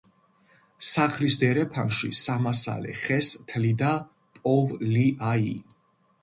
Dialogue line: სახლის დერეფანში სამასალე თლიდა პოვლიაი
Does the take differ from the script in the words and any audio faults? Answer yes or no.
yes